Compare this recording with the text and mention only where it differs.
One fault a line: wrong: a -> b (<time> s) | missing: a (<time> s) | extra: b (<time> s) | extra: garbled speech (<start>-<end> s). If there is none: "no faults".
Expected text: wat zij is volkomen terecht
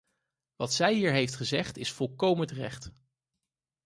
extra: hier heeft gezegd (0.9 s)